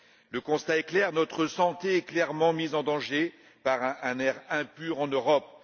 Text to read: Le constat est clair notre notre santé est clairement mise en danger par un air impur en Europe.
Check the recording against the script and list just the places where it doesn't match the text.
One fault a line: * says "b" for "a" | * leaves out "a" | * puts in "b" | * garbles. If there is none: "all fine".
* leaves out "notre"